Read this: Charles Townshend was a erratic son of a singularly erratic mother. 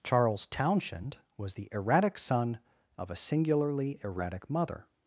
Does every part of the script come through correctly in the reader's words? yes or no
no